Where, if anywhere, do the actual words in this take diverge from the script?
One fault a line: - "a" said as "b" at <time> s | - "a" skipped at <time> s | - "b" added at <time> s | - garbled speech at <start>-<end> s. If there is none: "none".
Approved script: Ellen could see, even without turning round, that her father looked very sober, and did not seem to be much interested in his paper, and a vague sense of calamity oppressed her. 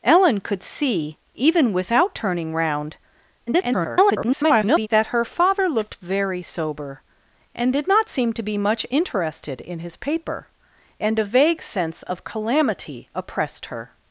- garbled speech at 3.5-4.9 s